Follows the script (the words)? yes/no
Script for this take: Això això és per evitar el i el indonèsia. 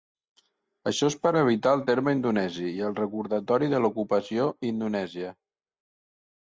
no